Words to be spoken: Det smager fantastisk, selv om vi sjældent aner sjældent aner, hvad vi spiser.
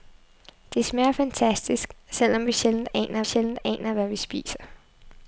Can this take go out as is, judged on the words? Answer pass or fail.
pass